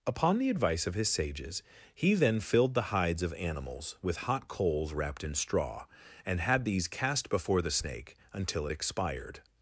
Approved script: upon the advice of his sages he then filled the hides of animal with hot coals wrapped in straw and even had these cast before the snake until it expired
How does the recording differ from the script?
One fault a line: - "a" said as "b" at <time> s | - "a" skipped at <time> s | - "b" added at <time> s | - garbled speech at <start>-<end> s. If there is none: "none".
- "animal" said as "animals" at 3.4 s
- "even" skipped at 6.4 s